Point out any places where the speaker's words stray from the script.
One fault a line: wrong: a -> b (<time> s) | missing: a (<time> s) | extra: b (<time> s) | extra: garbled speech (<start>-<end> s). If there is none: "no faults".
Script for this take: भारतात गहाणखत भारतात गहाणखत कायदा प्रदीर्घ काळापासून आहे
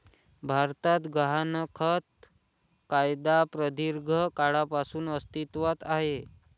missing: भारतात गहाणखत (2.2 s)
extra: अस्तित्वात (5.1 s)